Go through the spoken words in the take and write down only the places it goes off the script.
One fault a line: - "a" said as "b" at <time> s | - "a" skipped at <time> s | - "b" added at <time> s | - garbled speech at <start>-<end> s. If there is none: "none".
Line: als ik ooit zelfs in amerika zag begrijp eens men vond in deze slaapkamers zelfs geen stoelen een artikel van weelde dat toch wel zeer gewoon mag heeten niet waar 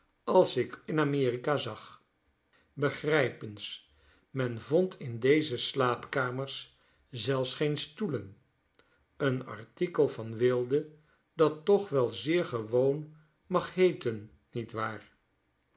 - "ooit zelfs" skipped at 0.8 s